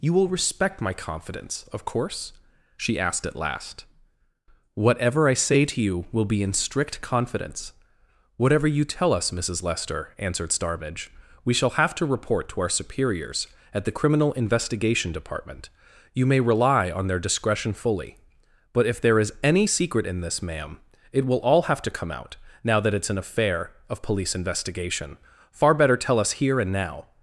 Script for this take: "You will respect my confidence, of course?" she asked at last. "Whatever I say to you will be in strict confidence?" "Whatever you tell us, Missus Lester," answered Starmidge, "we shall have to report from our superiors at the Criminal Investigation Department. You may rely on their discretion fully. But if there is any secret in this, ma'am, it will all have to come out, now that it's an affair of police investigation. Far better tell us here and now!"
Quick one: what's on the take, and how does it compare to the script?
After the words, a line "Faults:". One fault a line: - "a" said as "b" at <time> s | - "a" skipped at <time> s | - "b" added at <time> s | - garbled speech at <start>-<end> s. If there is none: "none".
"You will respect my confidence, of course?" she asked at last. "Whatever I say to you will be in strict confidence?" "Whatever you tell us, Missus Lester," answered Starmidge, "we shall have to report to our superiors at the Criminal Investigation Department. You may rely on their discretion fully. But if there is any secret in this, ma'am, it will all have to come out, now that it's an affair of police investigation. Far better tell us here and now!"
Faults:
- "from" said as "to" at 12.5 s